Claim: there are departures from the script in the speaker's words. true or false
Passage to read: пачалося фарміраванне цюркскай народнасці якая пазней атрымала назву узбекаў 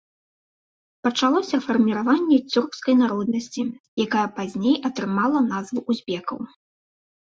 false